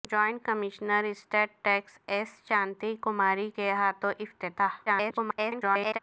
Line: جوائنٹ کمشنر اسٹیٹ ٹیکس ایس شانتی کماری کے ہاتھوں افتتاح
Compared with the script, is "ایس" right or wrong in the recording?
right